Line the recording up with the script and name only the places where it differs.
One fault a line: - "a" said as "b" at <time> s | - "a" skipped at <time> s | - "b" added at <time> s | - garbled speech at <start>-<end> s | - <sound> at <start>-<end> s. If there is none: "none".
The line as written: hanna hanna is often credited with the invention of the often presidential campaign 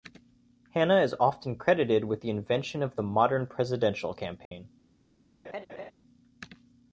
- "hanna" skipped at 1.0 s
- "often" said as "modern" at 3.0 s
- dropout at 4.5-4.5 s
- laugh at 5.4-5.9 s